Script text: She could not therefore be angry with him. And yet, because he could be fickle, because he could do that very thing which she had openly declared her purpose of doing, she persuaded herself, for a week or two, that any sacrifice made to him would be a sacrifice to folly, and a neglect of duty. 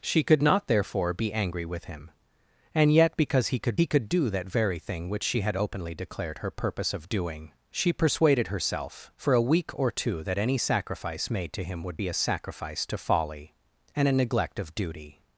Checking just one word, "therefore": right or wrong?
right